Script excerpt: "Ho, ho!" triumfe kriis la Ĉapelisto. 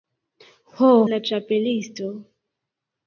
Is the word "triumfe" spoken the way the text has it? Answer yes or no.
no